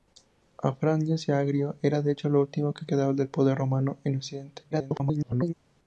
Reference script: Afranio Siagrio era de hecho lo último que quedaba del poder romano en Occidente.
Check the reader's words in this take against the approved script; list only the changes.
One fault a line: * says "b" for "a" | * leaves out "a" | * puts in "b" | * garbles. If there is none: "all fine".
* garbles